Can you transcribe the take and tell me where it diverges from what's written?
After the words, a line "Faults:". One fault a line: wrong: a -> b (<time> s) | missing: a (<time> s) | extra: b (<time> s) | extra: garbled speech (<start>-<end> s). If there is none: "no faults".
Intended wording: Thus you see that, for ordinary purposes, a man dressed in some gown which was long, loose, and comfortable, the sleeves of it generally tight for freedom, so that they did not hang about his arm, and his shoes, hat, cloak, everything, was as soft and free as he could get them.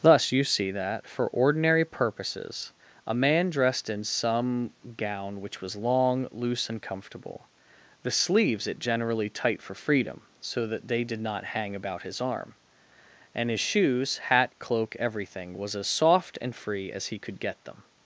Thus you see that, for ordinary purposes, a man dressed in some gown which was long, loose, and comfortable, the sleeves it generally tight for freedom, so that they did not hang about his arm, and his shoes, hat, cloak, everything, was as soft and free as he could get them.
Faults:
missing: of (8.7 s)